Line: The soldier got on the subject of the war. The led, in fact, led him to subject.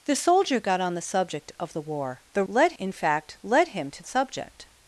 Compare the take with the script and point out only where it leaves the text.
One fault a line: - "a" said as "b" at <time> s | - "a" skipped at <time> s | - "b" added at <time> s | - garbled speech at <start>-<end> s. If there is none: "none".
none